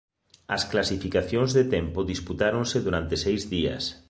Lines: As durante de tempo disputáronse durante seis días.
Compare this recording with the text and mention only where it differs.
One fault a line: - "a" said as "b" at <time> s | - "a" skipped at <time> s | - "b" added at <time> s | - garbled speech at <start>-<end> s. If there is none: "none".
- "durante" said as "clasificacións" at 0.7 s